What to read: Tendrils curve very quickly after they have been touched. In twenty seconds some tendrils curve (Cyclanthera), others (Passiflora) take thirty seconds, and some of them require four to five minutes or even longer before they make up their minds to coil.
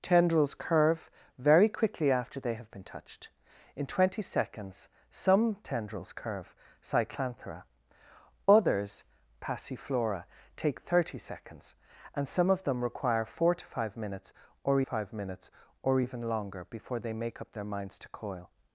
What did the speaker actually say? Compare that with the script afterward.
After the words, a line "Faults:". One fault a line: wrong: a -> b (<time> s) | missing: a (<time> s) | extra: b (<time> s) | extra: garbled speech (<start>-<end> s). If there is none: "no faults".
Tendrils curve very quickly after they have been touched. In twenty seconds some tendrils curve (Cyclanthera), others (Passiflora) take thirty seconds, and some of them require four to five minutes or five minutes or even longer before they make up their minds to coil.
Faults:
extra: five minutes or (14.8 s)